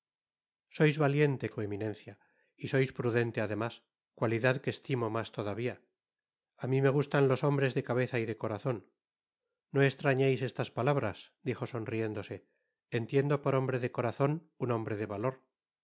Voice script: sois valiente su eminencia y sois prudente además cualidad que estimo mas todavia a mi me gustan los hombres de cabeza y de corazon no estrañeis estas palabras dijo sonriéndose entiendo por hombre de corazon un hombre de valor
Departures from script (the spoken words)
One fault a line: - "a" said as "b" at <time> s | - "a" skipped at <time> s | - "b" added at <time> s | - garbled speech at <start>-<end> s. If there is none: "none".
none